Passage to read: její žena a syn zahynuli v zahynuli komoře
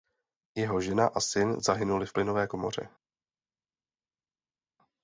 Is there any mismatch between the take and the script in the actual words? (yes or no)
yes